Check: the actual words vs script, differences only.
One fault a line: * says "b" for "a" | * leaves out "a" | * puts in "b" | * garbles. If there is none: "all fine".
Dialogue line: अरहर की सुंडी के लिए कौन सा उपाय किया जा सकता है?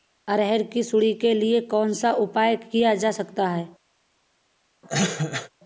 all fine